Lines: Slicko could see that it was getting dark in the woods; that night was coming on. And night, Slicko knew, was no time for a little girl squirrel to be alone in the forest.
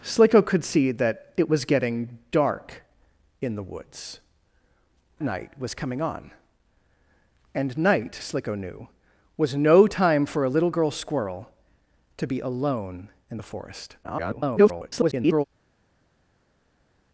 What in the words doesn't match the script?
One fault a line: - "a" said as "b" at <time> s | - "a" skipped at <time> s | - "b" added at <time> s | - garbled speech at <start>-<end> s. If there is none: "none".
- "that" skipped at 4.2 s
- garbled speech at 14.0-15.4 s